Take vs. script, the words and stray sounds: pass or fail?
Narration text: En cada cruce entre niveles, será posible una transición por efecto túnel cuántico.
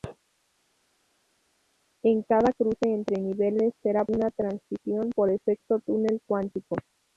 fail